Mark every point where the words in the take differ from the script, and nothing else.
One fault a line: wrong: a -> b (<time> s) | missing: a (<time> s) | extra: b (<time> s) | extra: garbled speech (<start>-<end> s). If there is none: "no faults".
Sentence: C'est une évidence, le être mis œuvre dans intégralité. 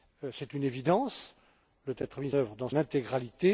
no faults